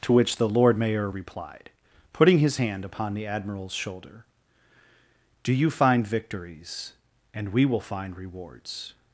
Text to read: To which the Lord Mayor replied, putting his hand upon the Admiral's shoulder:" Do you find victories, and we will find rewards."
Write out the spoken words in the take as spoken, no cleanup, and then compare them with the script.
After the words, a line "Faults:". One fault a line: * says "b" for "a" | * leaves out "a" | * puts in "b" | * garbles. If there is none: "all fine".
To which the Lord Mayor replied, putting his hand upon the Admiral's shoulder:" Do you find victories, and we will find rewards."
Faults:
all fine